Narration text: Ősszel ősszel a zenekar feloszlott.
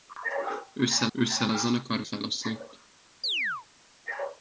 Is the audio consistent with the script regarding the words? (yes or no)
yes